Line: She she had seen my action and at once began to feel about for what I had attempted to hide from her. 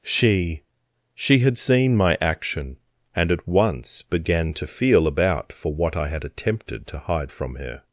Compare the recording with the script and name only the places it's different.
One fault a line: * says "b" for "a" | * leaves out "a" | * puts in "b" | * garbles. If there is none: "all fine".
all fine